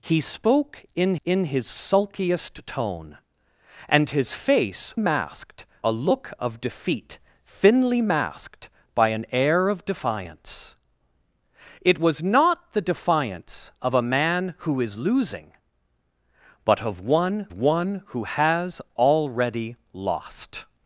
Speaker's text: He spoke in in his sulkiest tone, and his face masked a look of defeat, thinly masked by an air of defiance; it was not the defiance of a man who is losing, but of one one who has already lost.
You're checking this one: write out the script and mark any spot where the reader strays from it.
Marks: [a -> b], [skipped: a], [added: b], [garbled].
He spoke in in his sulkiest tone, and his face masked a look of defeat, thinly masked by an air of defiance; it was not the defiance of a man who is losing, but of one one who has already lost.